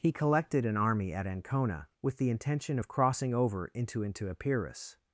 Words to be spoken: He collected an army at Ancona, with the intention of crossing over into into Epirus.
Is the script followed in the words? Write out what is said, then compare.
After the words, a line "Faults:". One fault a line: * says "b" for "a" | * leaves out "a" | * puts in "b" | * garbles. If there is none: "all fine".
He collected an army at Ancona, with the intention of crossing over into into Epirus.
Faults:
all fine